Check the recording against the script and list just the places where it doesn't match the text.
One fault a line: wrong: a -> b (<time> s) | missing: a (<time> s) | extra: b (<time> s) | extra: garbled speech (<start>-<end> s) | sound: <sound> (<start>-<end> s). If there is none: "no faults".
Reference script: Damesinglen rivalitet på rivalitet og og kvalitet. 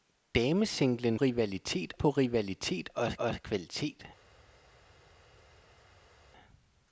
no faults